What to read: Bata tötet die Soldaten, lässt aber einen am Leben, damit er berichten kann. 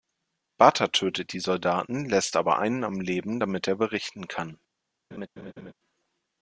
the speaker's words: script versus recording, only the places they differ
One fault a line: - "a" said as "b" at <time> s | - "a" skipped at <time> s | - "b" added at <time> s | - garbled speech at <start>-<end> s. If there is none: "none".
none